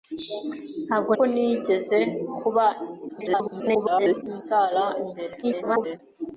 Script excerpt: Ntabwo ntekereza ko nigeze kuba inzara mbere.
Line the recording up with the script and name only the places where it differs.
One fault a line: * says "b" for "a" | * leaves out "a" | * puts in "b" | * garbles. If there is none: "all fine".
* leaves out "ntekereza"
* garbles
* garbles